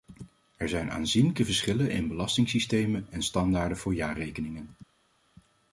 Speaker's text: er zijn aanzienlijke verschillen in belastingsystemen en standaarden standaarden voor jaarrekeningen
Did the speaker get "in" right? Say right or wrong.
right